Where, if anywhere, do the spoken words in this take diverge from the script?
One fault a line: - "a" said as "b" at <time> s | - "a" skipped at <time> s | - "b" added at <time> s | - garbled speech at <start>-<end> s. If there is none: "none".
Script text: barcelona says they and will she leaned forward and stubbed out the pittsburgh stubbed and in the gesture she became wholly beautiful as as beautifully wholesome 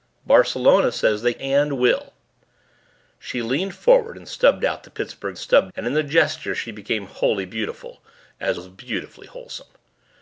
none